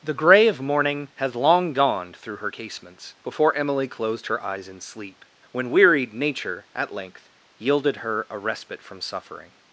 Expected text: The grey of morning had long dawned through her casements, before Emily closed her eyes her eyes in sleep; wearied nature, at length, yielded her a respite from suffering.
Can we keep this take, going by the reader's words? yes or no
no